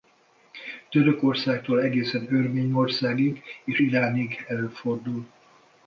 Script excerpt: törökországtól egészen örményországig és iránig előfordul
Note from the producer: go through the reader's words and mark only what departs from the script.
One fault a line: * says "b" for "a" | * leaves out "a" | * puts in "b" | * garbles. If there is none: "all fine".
all fine